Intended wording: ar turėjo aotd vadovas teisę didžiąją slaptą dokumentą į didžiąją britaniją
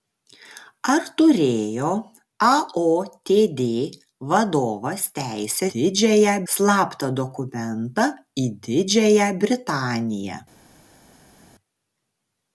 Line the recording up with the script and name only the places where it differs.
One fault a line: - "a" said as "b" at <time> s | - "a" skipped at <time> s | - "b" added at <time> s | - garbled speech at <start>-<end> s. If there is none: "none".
none